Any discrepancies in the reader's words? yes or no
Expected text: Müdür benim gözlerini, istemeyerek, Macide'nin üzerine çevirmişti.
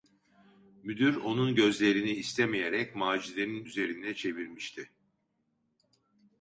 yes